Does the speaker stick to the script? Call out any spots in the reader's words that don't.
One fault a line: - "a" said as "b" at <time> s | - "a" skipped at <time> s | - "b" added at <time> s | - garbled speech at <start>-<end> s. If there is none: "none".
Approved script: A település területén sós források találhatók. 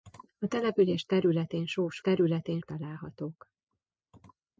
- "források" said as "területén" at 2.0 s